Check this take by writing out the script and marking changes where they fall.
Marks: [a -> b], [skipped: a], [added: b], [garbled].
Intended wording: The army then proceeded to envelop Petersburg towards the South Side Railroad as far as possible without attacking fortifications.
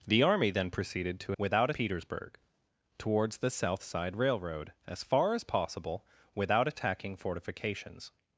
The army then proceeded to [envelop -> without] Petersburg towards the South Side Railroad as far as possible without attacking fortifications.